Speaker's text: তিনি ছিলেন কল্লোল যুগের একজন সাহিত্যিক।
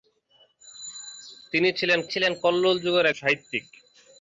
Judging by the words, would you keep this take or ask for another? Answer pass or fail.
fail